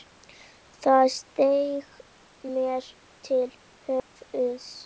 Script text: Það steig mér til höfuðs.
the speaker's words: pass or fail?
pass